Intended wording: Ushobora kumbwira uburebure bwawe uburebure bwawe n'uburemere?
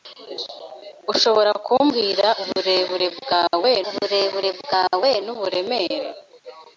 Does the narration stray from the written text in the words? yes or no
no